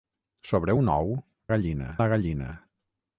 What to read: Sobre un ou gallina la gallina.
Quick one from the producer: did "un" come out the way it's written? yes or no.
yes